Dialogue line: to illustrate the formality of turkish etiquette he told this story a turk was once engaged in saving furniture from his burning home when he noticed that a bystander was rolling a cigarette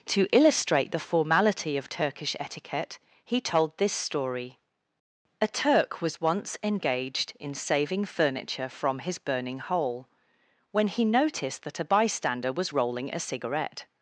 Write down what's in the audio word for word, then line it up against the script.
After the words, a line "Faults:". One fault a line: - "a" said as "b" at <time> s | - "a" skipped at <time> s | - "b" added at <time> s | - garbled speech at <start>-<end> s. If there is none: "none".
to illustrate the formality of turkish etiquette he told this story a turk was once engaged in saving furniture from his burning hole when he noticed that a bystander was rolling a cigarette
Faults:
- "home" said as "hole" at 9.6 s